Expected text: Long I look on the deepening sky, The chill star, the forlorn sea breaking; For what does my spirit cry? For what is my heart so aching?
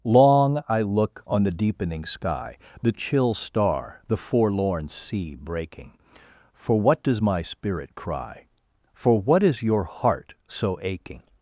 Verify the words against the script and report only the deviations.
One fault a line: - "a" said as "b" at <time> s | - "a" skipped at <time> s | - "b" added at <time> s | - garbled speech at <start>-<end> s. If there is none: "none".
- "my" said as "your" at 9.6 s